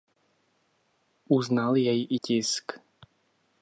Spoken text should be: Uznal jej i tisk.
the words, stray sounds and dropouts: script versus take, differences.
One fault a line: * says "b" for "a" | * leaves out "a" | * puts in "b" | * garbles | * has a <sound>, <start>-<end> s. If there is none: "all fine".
all fine